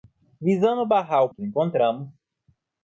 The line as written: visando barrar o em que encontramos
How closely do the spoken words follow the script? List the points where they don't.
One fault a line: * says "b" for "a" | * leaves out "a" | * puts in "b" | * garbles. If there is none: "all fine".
all fine